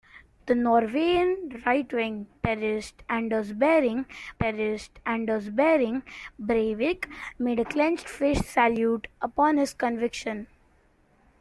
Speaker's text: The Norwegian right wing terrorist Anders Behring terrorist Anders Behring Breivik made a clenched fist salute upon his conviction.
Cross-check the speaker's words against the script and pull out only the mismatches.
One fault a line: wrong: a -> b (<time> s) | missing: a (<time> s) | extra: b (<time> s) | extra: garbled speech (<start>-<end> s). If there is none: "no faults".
no faults